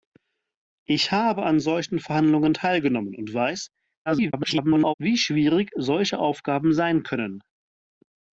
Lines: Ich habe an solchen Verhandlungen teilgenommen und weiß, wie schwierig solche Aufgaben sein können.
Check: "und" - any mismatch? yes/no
no